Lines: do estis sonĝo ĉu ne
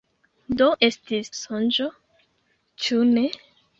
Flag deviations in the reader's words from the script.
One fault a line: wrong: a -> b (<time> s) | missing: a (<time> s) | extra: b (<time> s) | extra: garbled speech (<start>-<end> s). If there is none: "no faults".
no faults